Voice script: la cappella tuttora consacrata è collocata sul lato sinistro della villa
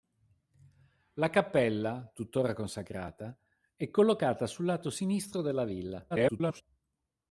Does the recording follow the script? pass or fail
fail